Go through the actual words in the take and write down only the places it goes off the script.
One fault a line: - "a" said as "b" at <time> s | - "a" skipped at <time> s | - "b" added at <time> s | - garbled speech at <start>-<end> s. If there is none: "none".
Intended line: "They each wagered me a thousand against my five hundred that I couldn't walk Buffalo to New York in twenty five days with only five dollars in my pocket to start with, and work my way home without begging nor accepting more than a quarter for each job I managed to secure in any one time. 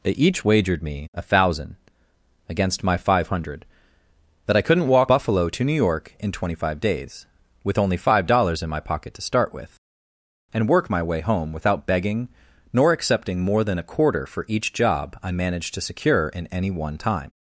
none